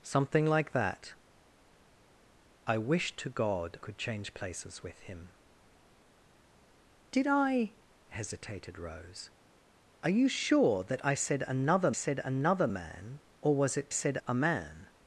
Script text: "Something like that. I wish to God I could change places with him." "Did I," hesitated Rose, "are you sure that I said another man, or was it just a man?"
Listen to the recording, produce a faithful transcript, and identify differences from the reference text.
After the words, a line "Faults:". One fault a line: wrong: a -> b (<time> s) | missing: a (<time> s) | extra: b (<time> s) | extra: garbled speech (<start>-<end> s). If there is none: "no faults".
"Something like that. I wish to God could change places with him." "Did I," hesitated Rose, "are you sure that I said another said another man, or was it said a man?"
Faults:
missing: I (3.8 s)
extra: said another (11.9 s)
wrong: just -> said (13.9 s)